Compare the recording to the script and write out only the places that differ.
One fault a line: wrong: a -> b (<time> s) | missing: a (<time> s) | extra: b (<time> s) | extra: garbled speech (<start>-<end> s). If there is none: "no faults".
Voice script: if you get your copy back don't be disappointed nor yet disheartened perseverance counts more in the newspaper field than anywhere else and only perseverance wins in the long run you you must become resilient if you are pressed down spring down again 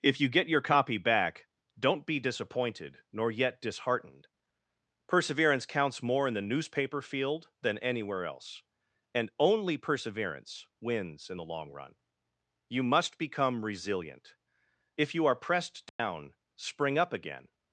missing: you (12.8 s)
wrong: down -> up (17.0 s)